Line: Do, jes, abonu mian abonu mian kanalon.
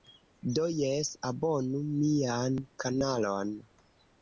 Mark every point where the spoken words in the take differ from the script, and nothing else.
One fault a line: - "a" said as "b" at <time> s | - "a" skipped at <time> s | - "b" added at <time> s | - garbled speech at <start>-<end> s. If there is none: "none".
- "abonu mian" skipped at 2.6 s